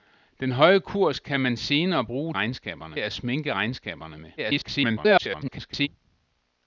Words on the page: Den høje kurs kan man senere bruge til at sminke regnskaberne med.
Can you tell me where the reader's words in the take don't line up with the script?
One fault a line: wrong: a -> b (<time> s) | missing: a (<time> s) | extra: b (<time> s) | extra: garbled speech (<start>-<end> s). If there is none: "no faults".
wrong: til -> regnskaberne (2.3 s)
extra: garbled speech (4.4-5.9 s)